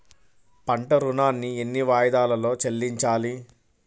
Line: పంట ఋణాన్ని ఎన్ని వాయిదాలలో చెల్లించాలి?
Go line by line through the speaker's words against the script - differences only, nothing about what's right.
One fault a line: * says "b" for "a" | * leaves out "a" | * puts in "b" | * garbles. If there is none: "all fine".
all fine